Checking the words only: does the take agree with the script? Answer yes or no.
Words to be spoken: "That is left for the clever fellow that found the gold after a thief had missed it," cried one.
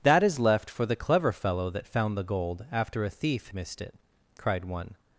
no